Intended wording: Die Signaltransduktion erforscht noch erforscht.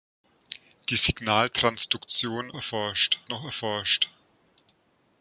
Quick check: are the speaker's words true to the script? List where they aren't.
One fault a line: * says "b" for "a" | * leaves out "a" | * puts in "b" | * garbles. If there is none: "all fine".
all fine